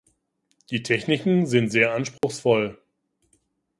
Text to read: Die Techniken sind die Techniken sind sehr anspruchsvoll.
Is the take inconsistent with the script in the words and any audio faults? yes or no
yes